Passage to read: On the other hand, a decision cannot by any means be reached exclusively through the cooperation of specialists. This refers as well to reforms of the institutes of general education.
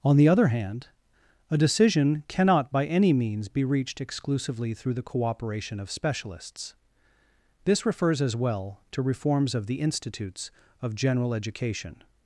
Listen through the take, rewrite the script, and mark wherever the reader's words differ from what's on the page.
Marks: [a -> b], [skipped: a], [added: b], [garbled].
On the other hand, a decision cannot by any means be reached exclusively through the cooperation of specialists. This refers as well to reforms of the institutes of general education.